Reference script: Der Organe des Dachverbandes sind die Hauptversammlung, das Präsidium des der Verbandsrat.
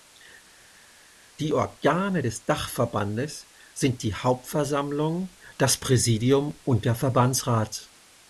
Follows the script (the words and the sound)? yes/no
no